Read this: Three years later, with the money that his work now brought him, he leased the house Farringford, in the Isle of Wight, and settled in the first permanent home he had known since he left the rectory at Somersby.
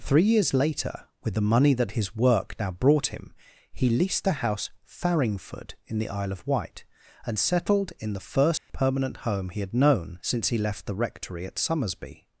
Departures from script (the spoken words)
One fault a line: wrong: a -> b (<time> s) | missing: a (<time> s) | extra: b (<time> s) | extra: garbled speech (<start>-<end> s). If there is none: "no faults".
no faults